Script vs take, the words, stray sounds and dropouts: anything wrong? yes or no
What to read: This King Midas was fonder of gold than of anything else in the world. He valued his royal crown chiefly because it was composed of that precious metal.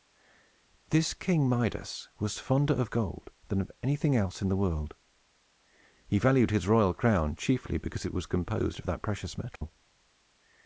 yes